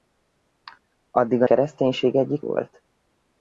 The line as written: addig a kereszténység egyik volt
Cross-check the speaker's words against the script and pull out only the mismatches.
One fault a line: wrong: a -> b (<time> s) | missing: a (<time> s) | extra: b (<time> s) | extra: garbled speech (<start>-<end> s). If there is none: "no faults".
no faults